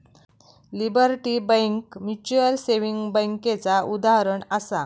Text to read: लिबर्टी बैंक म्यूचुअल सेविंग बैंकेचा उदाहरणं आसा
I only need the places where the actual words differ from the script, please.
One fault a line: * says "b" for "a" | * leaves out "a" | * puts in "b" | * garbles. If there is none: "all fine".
all fine